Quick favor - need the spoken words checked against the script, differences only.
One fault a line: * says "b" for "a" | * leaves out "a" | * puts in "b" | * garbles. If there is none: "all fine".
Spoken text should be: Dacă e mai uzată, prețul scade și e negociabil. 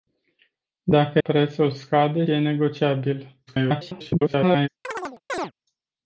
* leaves out "e mai uzată"
* leaves out "și"
* garbles